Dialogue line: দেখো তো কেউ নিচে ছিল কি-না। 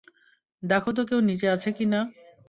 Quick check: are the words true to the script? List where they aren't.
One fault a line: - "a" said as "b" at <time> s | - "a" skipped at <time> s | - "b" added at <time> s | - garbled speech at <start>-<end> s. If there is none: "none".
- "ছিল" said as "আছে" at 1.5 s